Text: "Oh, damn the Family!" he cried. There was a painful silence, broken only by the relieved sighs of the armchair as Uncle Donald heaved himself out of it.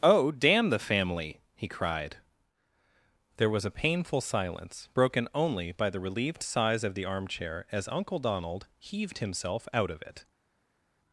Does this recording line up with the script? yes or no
yes